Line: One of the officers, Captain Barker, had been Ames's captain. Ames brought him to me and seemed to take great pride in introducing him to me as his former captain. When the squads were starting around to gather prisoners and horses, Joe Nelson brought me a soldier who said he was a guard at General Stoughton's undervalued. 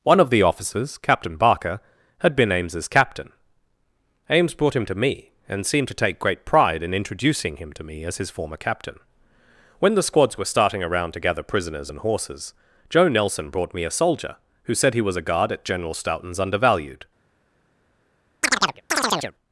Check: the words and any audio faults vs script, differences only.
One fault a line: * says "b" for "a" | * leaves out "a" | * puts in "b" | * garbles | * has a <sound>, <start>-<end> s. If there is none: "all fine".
* has a chirp, 18.4-19.3 s